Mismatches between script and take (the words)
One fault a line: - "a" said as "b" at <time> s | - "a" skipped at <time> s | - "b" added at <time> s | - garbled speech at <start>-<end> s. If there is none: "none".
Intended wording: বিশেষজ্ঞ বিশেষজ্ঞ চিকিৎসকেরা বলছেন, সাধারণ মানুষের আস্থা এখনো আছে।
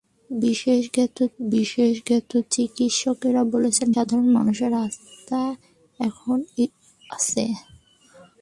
none